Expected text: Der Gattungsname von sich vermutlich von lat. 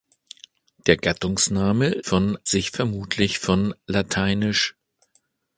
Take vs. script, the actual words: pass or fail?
pass